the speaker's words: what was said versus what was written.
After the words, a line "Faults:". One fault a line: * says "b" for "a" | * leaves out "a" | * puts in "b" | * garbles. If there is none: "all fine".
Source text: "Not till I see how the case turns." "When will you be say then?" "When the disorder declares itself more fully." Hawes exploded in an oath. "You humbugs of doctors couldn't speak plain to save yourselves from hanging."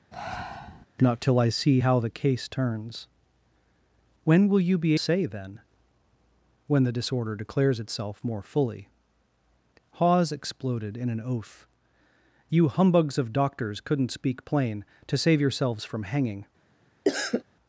"Not till I see how the case turns." "When will you be say then?" "When the disorder declares itself more fully." Hawes exploded in an oath. "You humbugs of doctors couldn't speak plain to save yourselves from hanging."
Faults:
all fine